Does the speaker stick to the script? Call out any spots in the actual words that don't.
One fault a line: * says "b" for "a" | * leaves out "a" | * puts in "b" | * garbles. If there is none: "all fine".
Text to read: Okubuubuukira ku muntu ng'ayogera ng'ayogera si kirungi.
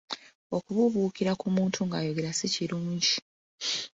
* leaves out "ng'ayogera"